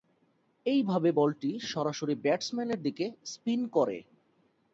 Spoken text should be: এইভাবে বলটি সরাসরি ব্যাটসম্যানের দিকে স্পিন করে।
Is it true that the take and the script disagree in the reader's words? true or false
false